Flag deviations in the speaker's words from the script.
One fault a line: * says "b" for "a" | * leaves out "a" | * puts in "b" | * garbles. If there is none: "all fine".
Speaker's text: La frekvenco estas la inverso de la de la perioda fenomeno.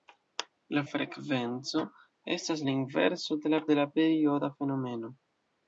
all fine